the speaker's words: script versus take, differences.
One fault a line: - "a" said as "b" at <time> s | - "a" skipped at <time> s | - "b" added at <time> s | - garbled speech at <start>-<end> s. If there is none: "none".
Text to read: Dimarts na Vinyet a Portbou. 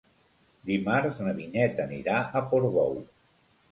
- "anirà" added at 1.9 s